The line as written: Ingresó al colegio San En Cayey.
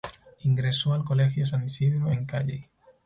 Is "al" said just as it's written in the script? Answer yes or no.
yes